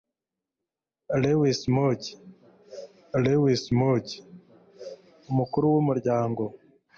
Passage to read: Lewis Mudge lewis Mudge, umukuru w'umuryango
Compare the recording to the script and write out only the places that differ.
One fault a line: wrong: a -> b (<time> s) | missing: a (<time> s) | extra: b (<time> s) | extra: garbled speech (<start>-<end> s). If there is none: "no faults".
no faults